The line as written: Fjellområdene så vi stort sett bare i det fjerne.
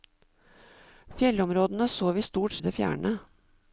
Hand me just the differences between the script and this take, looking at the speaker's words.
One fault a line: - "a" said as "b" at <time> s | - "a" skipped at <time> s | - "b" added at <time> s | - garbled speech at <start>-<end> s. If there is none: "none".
- "sett bare" skipped at 2.5 s